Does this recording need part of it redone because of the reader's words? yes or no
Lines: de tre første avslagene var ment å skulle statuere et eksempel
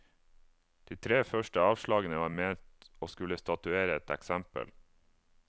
no